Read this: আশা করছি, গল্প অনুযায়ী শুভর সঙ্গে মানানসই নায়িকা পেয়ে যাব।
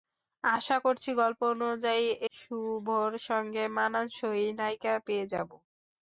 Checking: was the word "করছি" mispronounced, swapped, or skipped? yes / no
no